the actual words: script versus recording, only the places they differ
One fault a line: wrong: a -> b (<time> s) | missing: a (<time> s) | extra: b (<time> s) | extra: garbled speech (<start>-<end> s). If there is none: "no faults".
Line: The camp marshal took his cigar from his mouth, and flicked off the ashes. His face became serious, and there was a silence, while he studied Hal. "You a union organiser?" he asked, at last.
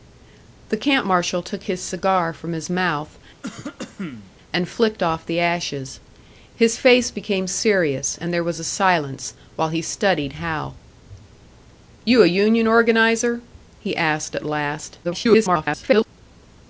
extra: garbled speech (15.0-16.1 s)